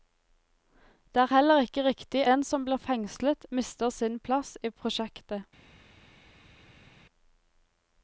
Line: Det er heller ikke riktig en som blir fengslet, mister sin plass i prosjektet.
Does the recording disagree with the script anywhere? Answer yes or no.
no